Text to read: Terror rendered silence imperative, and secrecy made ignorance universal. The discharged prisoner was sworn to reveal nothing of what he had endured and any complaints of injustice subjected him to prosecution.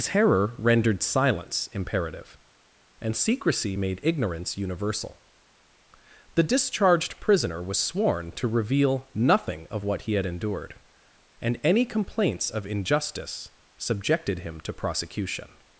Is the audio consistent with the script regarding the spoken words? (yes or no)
yes